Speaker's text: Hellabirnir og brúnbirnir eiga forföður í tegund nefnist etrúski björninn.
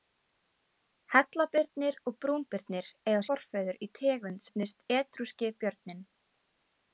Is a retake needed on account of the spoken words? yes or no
no